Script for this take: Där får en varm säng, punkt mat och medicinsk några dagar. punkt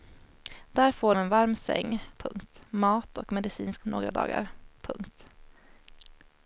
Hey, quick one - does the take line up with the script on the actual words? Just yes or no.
yes